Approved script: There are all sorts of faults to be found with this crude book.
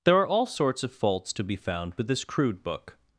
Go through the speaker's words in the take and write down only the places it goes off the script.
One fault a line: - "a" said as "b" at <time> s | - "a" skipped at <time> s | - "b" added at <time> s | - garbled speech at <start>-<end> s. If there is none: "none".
none